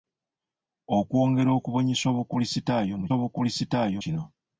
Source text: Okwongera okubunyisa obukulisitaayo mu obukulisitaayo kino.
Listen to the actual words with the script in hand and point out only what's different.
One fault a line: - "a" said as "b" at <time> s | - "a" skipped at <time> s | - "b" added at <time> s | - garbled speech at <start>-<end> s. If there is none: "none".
none